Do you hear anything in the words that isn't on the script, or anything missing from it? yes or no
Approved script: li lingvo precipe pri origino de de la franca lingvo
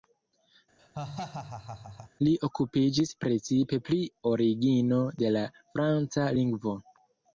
yes